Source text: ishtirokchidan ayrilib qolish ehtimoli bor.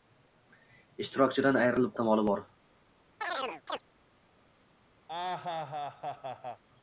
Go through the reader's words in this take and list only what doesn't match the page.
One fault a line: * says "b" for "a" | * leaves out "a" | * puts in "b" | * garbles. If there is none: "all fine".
* leaves out "qolish"